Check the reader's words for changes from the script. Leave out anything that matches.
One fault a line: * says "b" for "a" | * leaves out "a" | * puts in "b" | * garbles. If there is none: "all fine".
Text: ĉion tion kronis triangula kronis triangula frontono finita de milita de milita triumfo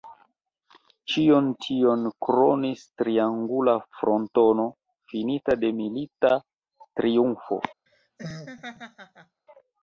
* leaves out "kronis triangula"
* leaves out "de milita"